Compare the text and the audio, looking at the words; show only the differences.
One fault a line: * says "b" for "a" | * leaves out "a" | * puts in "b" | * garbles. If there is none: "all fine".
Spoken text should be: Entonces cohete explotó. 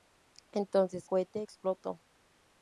all fine